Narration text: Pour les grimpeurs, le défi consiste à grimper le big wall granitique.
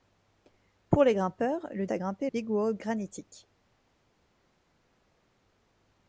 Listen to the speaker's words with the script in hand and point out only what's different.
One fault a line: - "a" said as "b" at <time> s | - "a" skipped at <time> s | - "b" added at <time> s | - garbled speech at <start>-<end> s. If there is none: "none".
- "défi consiste" skipped at 1.9 s
- "le" skipped at 2.3 s